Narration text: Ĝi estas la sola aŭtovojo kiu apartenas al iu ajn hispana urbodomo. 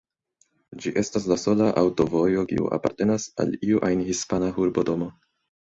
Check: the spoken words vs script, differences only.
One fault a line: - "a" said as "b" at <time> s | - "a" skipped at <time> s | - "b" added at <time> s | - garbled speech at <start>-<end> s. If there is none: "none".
none